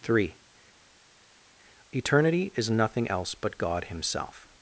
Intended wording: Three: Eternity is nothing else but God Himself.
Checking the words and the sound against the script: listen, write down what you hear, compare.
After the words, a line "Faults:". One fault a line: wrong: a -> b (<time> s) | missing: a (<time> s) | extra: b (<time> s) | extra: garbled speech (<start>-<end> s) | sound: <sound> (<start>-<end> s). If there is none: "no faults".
Three: Eternity is nothing else but God Himself.
Faults:
no faults